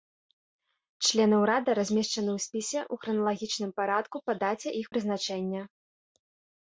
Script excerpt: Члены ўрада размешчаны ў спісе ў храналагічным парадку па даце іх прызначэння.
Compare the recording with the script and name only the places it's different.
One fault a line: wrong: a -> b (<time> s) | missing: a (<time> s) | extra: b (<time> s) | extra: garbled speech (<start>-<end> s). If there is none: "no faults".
no faults